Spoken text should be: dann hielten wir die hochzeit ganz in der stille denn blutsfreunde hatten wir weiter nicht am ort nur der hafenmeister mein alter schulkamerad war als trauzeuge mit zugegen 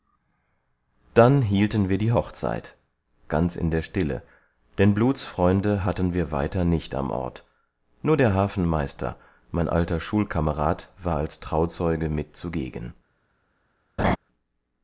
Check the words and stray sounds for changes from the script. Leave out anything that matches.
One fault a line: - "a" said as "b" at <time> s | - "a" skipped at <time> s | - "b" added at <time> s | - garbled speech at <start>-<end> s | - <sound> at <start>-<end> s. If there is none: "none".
- laugh at 14.0-14.2 s